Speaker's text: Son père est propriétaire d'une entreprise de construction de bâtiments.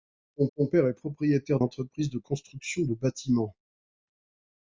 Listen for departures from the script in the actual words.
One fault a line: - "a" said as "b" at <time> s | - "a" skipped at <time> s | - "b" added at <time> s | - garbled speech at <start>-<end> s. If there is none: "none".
- "son" added at 0.5 s
- "d'une" skipped at 1.6 s